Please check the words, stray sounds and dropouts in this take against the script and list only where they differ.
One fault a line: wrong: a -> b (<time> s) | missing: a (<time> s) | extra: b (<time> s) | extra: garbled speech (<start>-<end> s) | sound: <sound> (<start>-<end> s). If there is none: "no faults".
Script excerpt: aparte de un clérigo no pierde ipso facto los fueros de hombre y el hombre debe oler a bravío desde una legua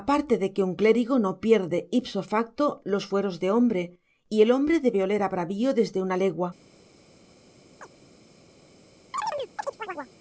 extra: que (0.5 s)
sound: chirp (7.8-7.9 s)
sound: chirp (9.1-10.1 s)